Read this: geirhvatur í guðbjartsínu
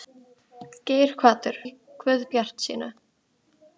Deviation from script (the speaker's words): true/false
false